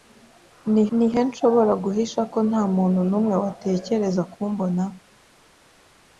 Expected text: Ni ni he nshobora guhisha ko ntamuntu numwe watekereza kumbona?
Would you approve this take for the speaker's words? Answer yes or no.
yes